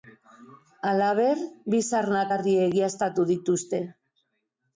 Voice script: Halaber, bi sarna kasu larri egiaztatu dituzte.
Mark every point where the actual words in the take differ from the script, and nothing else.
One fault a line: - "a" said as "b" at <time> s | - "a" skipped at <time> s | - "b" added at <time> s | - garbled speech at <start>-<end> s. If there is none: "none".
- "kasu" skipped at 2.2 s